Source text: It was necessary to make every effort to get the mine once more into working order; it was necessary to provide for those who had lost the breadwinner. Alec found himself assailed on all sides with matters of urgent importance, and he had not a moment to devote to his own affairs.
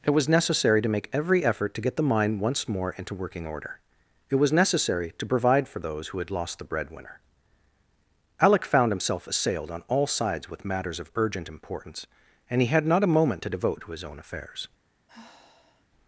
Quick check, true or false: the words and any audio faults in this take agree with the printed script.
false